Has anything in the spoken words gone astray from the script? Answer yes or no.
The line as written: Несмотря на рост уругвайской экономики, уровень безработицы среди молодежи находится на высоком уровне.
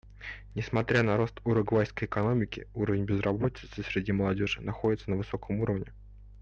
no